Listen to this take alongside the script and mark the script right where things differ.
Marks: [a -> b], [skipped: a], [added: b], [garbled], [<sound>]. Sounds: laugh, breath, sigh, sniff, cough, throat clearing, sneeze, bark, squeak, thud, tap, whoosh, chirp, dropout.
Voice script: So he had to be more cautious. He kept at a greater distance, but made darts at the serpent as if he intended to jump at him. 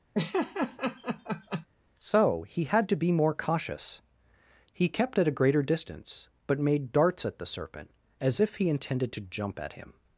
[laugh] So he had to be more cautious. He kept at a greater distance, but made darts at the serpent as if he intended to jump at him.